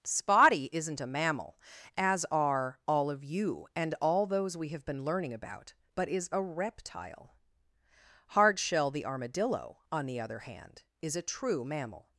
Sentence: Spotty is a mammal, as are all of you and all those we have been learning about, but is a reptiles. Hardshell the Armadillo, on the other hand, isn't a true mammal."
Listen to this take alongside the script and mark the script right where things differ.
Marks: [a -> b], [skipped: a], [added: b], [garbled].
Spotty [is -> isn't] a mammal, as are all of you and all those we have been learning about, but is a [reptiles. -> reptile] Hardshell the Armadillo, on the other hand, [isn't -> is] a true mammal."